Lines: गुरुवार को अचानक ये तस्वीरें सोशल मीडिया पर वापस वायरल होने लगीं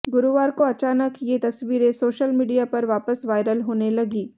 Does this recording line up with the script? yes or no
yes